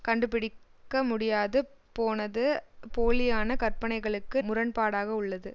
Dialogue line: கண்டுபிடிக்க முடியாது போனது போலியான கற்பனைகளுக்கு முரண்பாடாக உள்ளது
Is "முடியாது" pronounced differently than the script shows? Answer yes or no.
no